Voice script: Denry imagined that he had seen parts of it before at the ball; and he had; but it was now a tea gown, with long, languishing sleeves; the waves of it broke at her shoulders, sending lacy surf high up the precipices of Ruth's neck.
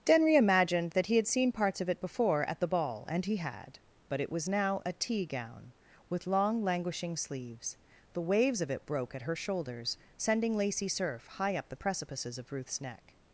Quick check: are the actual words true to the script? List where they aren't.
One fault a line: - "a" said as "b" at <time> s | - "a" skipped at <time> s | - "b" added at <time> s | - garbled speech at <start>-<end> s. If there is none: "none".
none